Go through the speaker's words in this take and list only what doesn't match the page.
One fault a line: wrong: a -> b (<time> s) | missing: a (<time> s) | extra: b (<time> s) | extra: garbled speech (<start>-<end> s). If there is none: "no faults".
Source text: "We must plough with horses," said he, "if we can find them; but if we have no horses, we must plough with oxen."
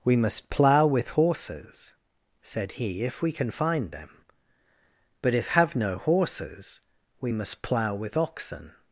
missing: we (5.5 s)